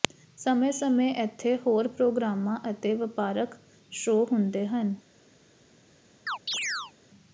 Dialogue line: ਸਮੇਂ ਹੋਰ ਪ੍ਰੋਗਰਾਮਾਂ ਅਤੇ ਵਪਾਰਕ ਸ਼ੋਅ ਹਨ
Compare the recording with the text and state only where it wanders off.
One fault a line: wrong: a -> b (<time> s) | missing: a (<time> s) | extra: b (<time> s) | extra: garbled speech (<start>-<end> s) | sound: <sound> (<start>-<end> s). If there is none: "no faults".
extra: ਸਮੇਂ ਇੱਥੇ (0.7 s)
extra: ਹੁੰਦੇ (4.3 s)
sound: chirp (6.3-6.9 s)